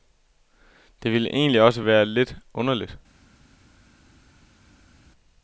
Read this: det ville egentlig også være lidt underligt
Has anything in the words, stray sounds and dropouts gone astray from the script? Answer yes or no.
no